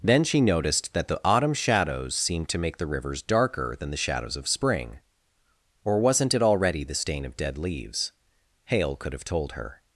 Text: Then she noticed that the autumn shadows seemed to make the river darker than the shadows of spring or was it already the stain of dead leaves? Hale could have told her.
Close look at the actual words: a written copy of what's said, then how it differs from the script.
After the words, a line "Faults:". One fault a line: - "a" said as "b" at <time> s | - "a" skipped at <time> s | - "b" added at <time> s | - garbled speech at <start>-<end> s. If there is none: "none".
Then she noticed that the autumn shadows seemed to make the rivers darker than the shadows of spring or wasn't it already the stain of dead leaves? Hale could have told her.
Faults:
- "river" said as "rivers" at 2.9 s
- "was" said as "wasn't" at 6.0 s